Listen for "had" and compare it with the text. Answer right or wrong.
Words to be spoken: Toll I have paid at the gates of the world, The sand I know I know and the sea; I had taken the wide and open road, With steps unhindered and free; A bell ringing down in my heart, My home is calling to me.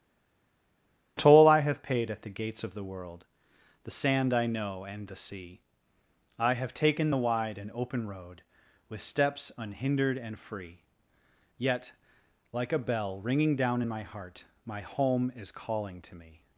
wrong